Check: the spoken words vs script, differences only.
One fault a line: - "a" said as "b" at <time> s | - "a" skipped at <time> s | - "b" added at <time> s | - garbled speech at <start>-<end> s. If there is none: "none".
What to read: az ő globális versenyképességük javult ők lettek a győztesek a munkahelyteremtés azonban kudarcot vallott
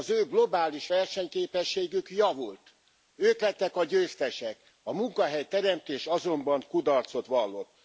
none